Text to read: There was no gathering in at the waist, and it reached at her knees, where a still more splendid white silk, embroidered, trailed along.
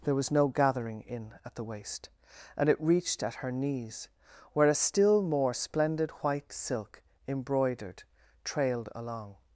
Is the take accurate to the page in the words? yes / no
yes